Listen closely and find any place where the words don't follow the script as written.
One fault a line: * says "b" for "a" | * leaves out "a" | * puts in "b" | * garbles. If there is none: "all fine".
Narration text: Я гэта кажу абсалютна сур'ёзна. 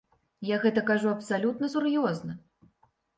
all fine